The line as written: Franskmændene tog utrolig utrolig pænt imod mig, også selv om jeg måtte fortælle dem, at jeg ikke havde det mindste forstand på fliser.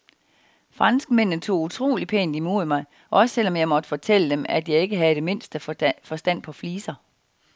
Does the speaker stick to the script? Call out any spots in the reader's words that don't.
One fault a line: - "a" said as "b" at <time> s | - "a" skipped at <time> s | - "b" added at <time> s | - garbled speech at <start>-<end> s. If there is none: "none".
- "utrolig" skipped at 2.1 s